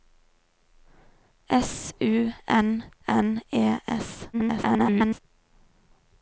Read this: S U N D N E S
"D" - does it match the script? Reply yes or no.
no